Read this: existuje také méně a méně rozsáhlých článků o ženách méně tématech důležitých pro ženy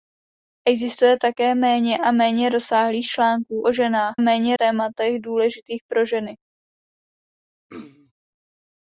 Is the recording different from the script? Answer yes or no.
no